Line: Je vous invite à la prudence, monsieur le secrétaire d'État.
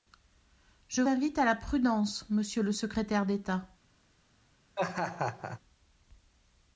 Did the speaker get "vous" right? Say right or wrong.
wrong